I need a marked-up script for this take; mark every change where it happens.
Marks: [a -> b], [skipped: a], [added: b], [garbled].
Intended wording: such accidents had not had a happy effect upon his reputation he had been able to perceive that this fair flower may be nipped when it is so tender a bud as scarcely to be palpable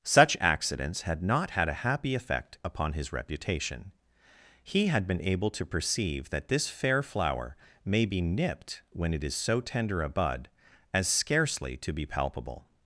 such accidents had not had a happy effect upon his reputation he had been able to perceive that this fair flower may be nipped when it is so tender a bud as scarcely to be palpable